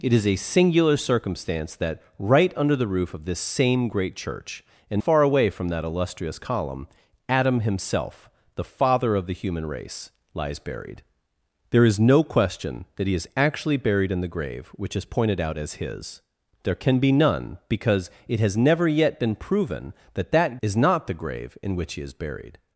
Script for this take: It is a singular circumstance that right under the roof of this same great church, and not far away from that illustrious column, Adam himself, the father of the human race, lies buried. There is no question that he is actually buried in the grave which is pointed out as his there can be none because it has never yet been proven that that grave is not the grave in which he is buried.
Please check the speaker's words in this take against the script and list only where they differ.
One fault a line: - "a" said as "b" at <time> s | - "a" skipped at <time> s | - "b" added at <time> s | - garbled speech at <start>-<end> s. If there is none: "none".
- "not" skipped at 5.0 s
- "grave" skipped at 20.6 s